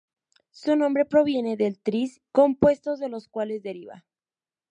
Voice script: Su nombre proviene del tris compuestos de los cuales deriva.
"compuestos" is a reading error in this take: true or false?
false